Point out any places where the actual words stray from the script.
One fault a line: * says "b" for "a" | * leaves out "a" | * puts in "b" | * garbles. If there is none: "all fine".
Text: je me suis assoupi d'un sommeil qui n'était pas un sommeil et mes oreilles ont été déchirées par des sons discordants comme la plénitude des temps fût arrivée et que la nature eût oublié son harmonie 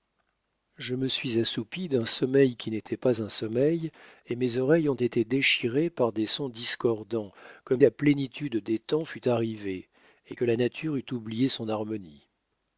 all fine